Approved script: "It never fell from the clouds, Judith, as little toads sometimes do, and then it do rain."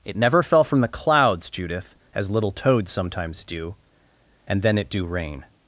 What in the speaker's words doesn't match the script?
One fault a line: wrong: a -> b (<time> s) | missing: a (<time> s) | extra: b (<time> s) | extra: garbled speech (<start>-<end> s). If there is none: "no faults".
no faults